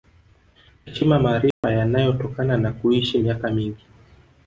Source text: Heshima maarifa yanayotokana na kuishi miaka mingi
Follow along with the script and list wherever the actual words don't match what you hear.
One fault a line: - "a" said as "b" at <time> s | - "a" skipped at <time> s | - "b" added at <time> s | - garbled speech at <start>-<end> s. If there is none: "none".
none